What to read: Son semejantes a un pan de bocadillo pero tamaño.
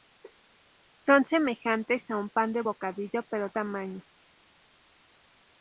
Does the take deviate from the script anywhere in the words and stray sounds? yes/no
no